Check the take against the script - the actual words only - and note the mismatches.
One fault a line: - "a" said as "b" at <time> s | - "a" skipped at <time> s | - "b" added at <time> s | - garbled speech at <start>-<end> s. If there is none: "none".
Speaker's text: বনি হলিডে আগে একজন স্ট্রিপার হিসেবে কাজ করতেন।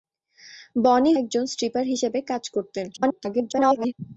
- "হলিডে আগে" skipped at 1.1 s
- garbled speech at 2.9-3.9 s